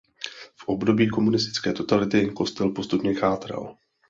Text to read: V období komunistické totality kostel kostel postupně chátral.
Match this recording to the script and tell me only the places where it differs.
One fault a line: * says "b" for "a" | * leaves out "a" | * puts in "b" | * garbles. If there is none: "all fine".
* leaves out "kostel"